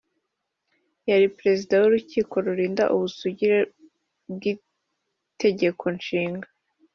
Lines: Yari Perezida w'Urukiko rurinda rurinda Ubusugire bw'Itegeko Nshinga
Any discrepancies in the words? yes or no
yes